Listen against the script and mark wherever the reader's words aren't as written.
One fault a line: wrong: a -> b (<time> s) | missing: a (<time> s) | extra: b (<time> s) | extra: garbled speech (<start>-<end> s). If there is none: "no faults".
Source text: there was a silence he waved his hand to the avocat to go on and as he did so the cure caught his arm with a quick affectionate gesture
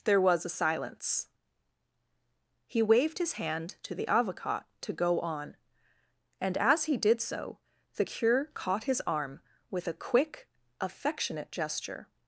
no faults